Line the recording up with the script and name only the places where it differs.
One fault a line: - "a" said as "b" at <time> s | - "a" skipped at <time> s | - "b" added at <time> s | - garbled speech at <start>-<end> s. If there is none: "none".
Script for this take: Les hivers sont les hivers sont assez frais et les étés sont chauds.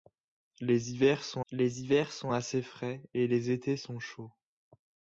none